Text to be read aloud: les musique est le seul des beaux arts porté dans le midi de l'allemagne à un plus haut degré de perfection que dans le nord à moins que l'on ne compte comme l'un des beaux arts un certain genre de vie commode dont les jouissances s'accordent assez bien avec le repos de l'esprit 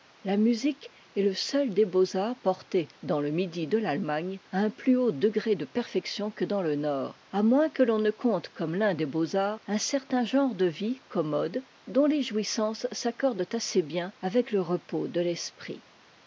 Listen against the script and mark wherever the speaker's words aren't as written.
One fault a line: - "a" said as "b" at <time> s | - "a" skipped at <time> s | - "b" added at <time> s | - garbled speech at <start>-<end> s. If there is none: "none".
- "les" said as "la" at 0.2 s